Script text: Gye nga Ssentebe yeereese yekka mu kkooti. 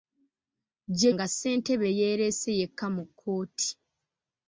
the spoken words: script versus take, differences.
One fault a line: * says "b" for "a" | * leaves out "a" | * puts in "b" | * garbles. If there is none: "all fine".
all fine